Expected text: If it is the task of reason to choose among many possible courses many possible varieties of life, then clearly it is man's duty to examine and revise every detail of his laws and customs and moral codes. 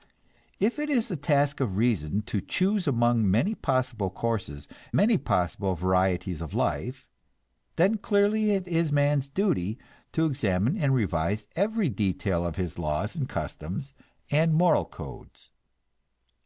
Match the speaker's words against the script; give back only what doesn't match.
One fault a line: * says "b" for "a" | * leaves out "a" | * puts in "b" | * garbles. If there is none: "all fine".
all fine